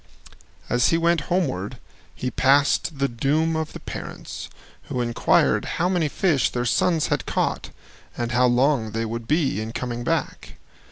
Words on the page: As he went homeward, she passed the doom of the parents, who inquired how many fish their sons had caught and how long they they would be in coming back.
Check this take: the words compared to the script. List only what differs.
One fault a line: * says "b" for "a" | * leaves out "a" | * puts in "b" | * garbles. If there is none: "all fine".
* says "he" for "she"
* leaves out "they"